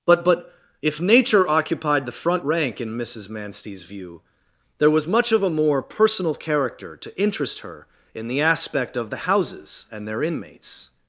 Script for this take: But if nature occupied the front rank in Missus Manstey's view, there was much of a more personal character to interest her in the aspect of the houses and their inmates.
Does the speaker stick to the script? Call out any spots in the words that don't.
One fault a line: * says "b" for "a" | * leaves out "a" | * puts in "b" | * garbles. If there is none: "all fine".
* puts in "but"